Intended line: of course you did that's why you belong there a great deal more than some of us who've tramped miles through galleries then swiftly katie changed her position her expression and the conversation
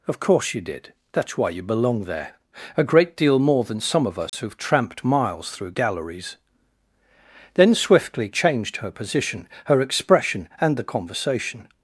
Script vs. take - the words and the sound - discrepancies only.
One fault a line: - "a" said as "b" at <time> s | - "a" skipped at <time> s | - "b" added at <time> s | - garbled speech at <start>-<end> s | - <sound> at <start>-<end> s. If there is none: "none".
- dropout at 4.3-4.3 s
- "katie" skipped at 8.3 s